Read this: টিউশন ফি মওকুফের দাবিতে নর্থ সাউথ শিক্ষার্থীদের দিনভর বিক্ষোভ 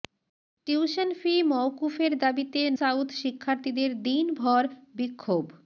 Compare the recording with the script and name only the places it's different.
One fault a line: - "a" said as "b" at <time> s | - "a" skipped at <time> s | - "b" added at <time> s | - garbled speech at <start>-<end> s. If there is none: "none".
- "নর্থ" skipped at 2.6 s